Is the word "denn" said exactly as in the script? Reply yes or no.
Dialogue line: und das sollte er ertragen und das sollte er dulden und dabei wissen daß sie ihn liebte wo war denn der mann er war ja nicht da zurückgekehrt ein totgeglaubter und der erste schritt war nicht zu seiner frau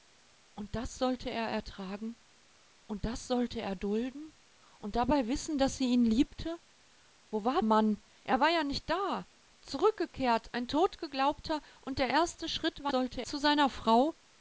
no